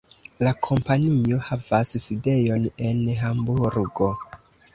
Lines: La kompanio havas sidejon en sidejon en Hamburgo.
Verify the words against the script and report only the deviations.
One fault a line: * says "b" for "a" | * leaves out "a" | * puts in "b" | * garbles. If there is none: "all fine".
* leaves out "sidejon en"